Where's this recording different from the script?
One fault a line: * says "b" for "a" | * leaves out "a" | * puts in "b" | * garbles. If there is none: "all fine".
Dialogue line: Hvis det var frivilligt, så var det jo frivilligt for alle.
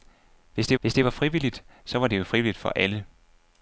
* puts in "hvis det"